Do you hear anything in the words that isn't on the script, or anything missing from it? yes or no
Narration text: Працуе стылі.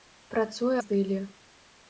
no